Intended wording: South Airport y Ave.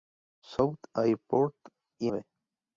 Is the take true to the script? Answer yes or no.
yes